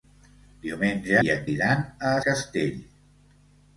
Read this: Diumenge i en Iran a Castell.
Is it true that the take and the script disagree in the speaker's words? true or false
false